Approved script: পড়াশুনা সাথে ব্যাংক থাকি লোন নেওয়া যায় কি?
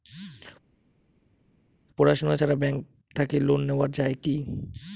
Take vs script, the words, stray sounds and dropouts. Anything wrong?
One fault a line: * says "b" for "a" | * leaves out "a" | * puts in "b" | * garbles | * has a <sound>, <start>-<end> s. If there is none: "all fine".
* says "ছাড়া" for "সাথে"